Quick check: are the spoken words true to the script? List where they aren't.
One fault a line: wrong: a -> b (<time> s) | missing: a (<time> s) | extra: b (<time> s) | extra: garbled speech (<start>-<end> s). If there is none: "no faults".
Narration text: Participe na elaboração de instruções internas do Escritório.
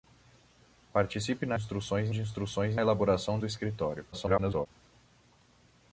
wrong: elaboração -> instruções (1.5 s)
wrong: internas -> elaboração (2.8 s)
extra: garbled speech (4.1-4.7 s)